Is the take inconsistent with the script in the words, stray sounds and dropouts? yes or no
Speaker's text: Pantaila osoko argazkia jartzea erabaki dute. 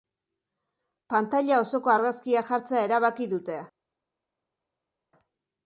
no